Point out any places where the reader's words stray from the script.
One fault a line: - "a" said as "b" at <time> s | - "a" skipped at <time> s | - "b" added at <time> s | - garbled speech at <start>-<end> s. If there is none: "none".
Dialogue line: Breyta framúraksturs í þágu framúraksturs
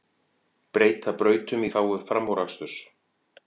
- "framúraksturs" said as "brautum" at 1.2 s